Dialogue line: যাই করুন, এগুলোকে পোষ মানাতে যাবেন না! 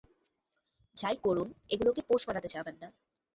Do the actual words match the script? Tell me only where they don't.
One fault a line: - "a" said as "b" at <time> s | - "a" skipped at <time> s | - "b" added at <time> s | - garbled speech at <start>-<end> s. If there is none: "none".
none